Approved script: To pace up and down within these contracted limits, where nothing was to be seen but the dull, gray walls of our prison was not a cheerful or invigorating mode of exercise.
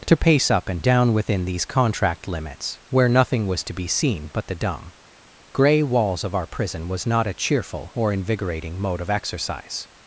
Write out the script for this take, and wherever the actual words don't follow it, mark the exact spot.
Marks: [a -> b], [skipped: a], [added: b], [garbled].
To pace up and down within these [contracted -> contract] limits, where nothing was to be seen but the [dull, -> dumb] gray walls of our prison was not a cheerful or invigorating mode of exercise.